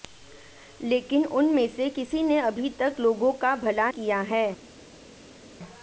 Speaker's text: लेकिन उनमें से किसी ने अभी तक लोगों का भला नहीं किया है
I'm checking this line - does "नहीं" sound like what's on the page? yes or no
no